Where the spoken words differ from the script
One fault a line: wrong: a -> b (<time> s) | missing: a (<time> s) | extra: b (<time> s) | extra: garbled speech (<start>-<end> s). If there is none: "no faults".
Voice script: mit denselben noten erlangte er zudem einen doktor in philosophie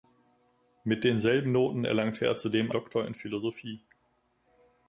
missing: einen (2.7 s)